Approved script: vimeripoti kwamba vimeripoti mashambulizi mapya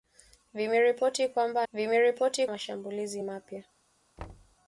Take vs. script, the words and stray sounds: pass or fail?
fail